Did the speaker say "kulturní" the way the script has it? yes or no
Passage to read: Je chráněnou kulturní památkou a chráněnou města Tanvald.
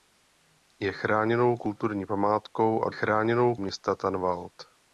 yes